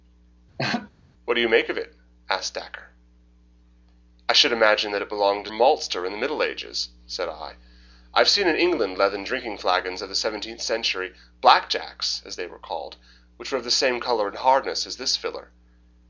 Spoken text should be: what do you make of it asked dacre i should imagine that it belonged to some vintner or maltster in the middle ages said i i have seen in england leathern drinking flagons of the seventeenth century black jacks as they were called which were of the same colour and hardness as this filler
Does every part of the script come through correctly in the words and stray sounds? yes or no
no